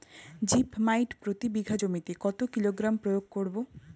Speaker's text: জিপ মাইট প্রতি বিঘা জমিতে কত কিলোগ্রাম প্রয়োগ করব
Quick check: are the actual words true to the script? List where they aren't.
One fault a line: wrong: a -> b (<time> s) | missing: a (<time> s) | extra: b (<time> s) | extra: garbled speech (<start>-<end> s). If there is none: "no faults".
no faults